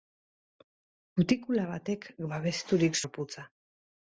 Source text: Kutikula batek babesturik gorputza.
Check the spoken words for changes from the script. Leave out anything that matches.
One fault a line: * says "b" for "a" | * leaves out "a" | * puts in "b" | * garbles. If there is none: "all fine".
all fine